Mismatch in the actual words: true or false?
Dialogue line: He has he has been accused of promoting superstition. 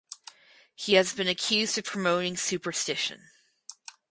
true